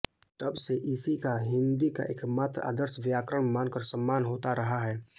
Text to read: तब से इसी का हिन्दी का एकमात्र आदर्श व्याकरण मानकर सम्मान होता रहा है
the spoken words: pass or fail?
pass